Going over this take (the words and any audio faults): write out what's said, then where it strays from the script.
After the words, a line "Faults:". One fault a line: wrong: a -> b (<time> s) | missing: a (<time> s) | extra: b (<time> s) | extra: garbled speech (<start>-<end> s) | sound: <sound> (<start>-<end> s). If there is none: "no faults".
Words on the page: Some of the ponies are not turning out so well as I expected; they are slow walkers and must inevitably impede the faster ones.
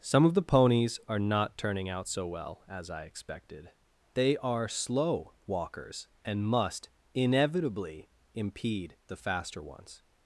Some of the ponies are not turning out so well as I expected; they are slow walkers and must inevitably impede the faster ones.
Faults:
no faults